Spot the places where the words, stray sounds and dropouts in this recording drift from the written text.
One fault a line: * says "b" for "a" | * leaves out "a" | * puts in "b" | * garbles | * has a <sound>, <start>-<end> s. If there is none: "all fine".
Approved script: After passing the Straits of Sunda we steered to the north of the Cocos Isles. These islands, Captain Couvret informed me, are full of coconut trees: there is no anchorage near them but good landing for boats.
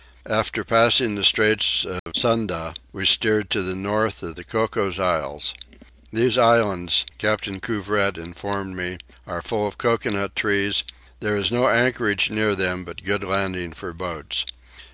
* has a dropout, 2.0-2.1 s